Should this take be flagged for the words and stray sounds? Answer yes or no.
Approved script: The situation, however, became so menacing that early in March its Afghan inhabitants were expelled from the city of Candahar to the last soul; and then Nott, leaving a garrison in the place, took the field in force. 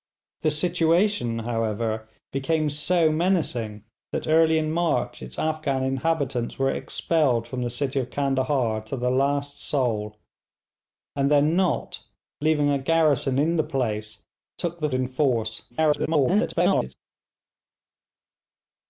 yes